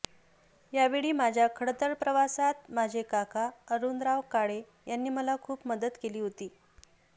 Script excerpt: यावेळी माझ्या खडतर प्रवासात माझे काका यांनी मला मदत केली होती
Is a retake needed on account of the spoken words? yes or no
yes